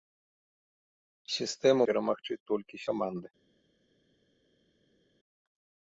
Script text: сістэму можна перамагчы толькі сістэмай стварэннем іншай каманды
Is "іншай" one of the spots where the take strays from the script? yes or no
yes